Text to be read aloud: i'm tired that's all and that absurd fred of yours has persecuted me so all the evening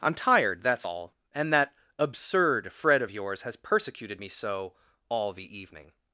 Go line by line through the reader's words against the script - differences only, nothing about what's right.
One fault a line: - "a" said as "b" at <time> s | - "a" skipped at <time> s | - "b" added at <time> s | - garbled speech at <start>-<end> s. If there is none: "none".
none